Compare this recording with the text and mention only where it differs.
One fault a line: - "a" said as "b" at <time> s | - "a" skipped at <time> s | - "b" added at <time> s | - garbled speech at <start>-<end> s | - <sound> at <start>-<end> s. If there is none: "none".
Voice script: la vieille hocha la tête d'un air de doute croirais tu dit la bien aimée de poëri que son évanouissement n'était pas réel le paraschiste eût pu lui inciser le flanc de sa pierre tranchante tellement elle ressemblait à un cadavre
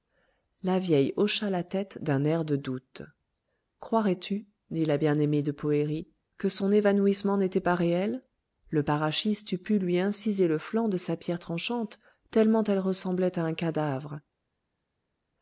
none